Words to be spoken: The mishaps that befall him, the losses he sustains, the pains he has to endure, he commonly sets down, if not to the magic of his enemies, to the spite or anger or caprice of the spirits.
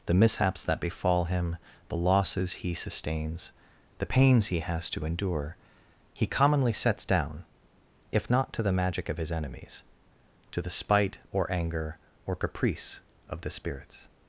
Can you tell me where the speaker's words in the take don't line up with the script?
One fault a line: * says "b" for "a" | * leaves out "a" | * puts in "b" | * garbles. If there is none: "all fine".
all fine